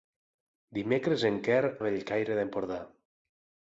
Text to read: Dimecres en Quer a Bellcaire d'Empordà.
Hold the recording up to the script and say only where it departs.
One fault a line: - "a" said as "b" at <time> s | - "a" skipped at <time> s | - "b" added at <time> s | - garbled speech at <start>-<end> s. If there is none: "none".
none